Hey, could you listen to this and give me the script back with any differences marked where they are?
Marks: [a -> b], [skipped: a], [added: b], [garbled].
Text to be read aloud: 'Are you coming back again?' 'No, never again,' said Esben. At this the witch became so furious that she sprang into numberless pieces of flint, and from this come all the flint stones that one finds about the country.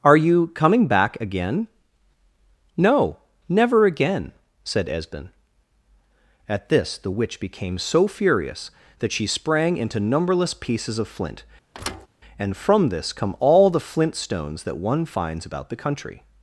'Are you coming back again?' 'No, never again,' said Esben. At this the witch became so furious that she sprang into numberless pieces of flint, and from this come all the flint stones that one finds about the country.